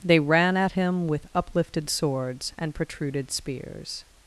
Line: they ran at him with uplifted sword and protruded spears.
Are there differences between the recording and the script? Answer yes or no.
yes